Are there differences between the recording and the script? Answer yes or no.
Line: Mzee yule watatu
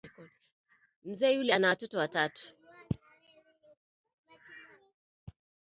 yes